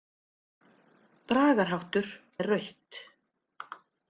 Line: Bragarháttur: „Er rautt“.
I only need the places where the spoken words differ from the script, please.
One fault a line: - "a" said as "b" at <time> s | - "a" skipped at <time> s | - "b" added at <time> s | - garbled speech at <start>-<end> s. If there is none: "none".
none